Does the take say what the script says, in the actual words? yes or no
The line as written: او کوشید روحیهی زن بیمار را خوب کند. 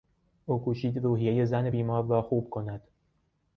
yes